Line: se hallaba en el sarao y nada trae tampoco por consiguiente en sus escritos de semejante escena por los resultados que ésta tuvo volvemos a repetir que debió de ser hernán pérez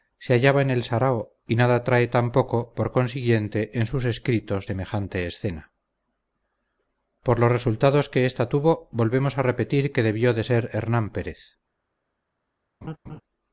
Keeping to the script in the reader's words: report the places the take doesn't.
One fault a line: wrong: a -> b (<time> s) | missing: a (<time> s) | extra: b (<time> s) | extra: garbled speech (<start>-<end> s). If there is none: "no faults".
missing: de (4.7 s)